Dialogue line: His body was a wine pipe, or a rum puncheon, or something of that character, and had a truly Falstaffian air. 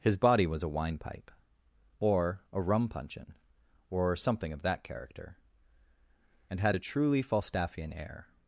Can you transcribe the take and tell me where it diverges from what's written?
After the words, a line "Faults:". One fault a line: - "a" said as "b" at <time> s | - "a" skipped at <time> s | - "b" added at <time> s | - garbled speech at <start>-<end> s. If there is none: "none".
His body was a wine pipe, or a rum puncheon, or something of that character, and had a truly Falstaffian air.
Faults:
none